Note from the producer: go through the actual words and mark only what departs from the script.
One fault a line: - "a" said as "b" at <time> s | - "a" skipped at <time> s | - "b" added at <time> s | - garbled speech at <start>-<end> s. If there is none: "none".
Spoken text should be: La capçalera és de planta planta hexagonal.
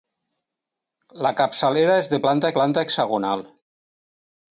none